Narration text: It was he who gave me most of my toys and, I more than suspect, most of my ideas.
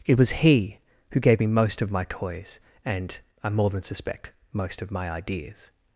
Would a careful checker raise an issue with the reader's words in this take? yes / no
no